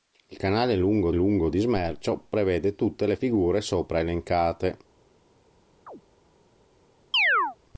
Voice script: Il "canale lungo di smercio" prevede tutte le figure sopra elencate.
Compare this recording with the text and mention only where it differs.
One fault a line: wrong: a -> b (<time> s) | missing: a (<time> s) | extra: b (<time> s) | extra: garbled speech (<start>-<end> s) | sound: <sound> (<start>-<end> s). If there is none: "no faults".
extra: lungo (1.1 s)
sound: chirp (5.9-6.0 s)
sound: chirp (7.1-7.6 s)